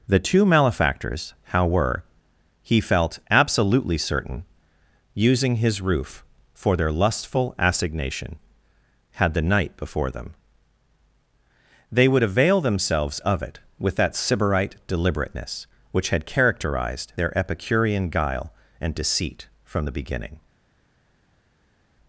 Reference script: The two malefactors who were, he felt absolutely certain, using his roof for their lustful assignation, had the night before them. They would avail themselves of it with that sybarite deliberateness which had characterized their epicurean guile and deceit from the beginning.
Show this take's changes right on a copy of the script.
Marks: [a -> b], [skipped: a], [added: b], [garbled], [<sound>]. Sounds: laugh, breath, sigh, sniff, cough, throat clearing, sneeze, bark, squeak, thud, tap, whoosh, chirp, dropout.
The two malefactors [who -> how] were, he felt absolutely certain, using his roof for their lustful assignation, had the night before them. They would avail themselves of it with that sybarite deliberateness which had characterized their epicurean guile and deceit from the beginning.